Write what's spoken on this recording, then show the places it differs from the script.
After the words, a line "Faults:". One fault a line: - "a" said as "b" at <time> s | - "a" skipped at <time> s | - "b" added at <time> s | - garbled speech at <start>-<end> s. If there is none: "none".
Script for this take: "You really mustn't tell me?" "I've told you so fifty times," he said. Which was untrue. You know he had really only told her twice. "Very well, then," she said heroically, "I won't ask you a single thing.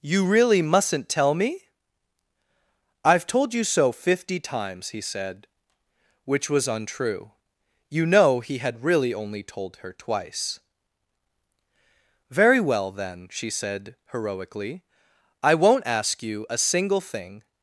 "You really mustn't tell me?" "I've told you so fifty times," he said. Which was untrue. You know he had really only told her twice. "Very well, then," she said heroically, "I won't ask you a single thing.
Faults:
none